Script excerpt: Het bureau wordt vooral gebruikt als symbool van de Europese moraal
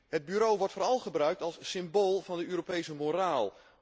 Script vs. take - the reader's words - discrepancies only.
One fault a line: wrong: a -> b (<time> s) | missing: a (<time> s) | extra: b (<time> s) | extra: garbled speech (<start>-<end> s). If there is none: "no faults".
no faults